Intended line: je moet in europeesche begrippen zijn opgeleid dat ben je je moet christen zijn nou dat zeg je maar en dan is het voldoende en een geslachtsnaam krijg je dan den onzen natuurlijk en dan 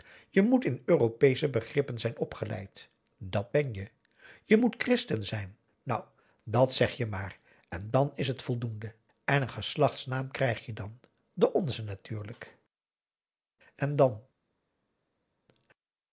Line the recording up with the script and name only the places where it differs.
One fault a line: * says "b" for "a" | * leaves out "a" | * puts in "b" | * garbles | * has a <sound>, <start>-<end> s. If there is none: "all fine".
all fine